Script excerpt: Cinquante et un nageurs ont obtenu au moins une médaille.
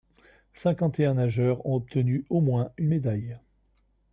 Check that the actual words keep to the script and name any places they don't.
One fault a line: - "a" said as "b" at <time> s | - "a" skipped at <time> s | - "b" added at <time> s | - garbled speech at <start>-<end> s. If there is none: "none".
none